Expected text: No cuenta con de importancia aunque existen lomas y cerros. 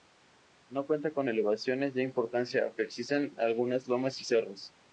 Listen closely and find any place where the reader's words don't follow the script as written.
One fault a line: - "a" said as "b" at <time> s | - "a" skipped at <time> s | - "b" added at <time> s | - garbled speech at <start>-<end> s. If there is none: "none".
- "elevaciones" added at 1.3 s
- "algunas" added at 3.4 s